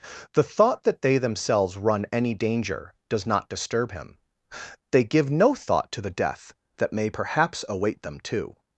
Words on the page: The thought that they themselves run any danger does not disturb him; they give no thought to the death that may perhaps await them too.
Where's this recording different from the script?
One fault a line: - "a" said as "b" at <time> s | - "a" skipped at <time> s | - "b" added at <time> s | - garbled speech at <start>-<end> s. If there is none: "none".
none